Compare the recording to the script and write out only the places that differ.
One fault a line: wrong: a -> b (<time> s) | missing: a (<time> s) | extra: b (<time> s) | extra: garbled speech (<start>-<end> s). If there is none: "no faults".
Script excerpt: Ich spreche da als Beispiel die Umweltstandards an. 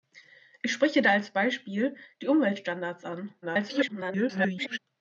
extra: garbled speech (3.4-4.8 s)